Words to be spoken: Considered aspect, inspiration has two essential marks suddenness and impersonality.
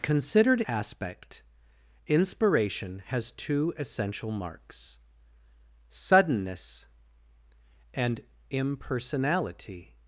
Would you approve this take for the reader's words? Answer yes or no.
yes